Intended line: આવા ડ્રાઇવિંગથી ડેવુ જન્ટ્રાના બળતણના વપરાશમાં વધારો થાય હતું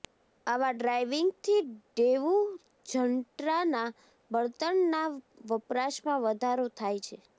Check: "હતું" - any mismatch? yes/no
yes